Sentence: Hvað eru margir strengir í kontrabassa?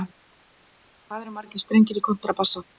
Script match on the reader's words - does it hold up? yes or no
yes